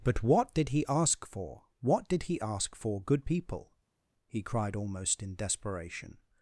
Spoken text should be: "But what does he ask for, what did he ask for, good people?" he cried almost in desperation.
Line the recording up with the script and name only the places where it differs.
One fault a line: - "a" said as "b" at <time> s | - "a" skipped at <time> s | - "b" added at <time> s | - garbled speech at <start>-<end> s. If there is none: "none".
- "does" said as "did" at 0.6 s